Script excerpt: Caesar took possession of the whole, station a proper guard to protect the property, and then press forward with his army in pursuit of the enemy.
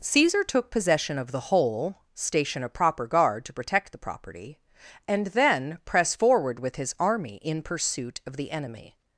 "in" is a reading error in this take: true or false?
false